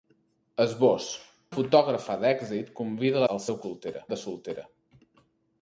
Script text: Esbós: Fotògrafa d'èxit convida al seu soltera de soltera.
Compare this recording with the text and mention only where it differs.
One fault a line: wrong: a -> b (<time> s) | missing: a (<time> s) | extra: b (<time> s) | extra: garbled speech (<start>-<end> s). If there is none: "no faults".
no faults